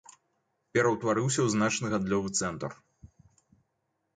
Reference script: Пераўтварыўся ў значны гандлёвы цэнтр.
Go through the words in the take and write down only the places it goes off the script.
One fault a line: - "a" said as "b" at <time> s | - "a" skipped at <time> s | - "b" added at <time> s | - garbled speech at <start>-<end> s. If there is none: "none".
none